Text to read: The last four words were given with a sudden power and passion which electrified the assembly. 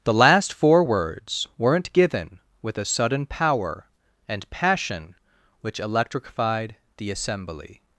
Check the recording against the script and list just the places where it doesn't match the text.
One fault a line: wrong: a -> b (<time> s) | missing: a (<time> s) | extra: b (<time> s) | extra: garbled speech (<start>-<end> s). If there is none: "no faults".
wrong: were -> weren't (1.6 s)